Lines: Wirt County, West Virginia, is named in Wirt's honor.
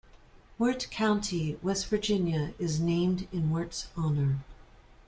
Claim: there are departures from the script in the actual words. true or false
false